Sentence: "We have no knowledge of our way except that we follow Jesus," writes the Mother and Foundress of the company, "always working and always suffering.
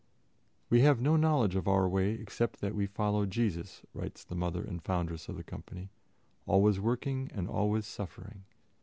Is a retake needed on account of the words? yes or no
no